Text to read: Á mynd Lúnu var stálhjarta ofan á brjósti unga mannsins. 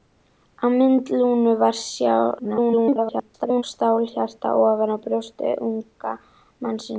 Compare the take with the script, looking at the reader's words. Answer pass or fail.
fail